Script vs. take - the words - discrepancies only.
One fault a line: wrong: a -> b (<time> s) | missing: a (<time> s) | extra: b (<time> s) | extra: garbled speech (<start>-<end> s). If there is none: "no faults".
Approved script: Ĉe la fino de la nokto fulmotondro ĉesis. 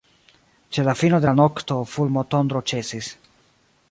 no faults